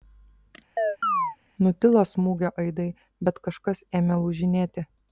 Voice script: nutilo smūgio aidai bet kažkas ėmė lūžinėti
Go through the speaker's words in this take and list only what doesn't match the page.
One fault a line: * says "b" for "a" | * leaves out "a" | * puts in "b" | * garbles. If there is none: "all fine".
all fine